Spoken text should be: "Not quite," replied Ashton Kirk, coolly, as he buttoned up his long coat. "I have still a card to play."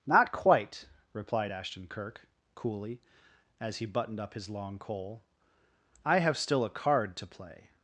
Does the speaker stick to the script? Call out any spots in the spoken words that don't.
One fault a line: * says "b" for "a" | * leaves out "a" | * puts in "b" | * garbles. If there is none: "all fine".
* says "coal" for "coat"